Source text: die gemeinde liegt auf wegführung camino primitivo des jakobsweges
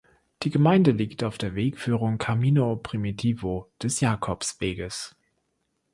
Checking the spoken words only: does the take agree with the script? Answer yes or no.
no